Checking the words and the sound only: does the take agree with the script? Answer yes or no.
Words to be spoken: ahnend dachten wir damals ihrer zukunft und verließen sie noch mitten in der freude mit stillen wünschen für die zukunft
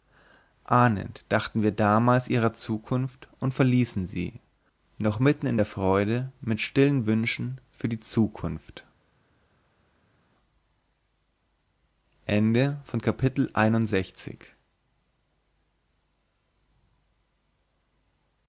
yes